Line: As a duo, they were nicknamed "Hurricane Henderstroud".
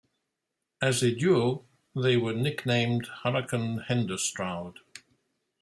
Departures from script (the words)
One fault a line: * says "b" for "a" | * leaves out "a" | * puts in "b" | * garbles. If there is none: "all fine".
all fine